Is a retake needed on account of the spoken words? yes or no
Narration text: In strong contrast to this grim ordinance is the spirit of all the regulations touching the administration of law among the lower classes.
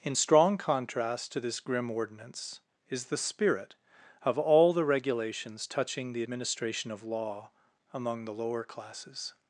no